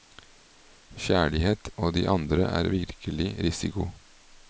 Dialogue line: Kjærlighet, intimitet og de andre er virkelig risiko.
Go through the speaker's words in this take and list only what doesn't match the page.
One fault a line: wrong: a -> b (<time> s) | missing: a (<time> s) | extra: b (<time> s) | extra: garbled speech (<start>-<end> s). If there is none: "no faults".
missing: intimitet (1.7 s)